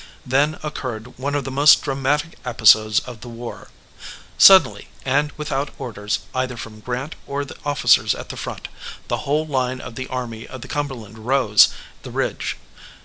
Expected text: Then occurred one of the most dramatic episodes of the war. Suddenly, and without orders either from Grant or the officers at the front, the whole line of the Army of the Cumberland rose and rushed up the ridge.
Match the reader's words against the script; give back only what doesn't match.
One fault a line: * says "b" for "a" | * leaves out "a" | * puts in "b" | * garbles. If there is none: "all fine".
* leaves out "and rushed up"